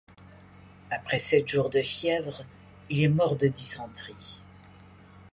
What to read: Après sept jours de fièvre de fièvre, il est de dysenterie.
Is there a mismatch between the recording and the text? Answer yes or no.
yes